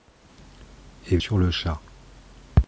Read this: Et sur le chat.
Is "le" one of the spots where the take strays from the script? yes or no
no